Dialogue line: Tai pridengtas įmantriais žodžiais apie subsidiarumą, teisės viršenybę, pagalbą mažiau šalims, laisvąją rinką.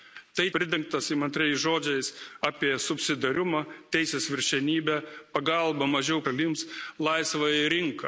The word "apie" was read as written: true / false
true